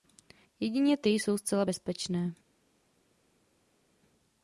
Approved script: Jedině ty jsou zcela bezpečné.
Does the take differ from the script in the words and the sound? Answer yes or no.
no